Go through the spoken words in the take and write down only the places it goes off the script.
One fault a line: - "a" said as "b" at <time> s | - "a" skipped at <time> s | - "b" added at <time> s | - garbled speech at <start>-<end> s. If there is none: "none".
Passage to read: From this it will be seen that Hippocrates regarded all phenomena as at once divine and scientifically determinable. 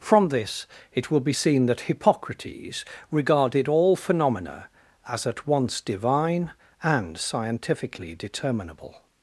none